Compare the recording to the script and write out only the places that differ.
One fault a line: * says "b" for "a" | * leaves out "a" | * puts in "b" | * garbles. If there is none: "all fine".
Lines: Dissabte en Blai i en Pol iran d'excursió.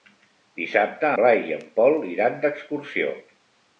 * leaves out "en"